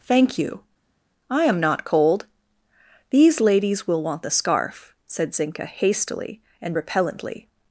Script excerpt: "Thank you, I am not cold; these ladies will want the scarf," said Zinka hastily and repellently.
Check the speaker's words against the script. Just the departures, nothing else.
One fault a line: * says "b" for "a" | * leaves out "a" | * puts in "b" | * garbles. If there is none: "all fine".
all fine